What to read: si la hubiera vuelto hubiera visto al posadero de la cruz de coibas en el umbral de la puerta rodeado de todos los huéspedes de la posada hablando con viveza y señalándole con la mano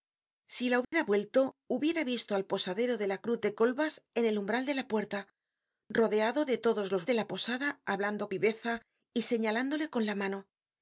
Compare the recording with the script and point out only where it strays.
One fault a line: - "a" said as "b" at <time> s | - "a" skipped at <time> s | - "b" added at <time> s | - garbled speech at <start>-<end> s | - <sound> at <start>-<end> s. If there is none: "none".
- dropout at 0.8-0.9 s
- "huéspedes" skipped at 7.1 s
- "con" skipped at 8.3 s